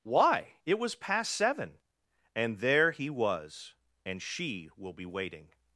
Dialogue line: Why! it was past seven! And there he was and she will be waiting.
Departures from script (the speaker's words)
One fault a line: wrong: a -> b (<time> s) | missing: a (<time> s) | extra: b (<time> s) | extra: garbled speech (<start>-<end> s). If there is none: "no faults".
no faults